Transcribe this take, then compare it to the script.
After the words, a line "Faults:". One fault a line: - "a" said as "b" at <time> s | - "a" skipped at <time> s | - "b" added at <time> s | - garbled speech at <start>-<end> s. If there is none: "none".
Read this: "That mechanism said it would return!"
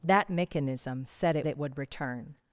"That mechanism said it it would return!"
Faults:
- "it" added at 1.5 s